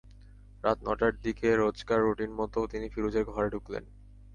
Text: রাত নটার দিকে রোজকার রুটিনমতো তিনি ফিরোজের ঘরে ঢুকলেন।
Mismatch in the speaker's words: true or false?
false